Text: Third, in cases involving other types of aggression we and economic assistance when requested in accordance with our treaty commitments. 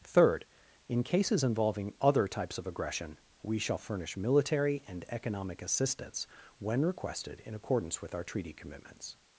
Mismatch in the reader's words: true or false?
true